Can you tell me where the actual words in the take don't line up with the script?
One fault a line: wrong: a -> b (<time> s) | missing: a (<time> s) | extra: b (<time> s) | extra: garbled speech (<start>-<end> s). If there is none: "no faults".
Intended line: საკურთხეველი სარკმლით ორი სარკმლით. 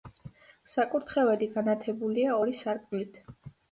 wrong: სარკმლით -> განათებულია (1.6 s)